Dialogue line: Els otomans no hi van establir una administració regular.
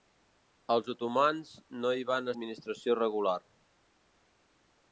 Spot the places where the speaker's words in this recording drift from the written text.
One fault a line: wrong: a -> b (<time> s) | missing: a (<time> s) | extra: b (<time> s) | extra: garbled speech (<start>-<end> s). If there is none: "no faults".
missing: establir una (2.3 s)